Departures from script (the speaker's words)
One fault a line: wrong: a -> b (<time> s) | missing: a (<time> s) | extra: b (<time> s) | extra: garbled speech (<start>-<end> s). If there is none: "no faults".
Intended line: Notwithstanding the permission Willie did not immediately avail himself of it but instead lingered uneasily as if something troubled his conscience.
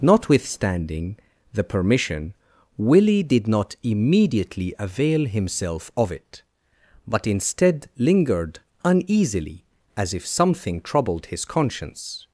no faults